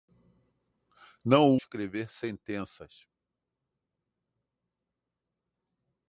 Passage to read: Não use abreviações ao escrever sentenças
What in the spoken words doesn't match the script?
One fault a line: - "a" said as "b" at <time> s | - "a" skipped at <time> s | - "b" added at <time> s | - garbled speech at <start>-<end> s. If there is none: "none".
- "use abreviações ao" skipped at 1.6 s